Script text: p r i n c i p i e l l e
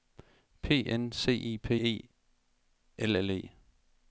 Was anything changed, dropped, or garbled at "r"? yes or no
yes